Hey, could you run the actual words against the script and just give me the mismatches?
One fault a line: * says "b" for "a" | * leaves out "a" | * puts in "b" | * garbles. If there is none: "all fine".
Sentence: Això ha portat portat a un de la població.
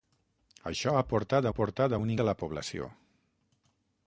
all fine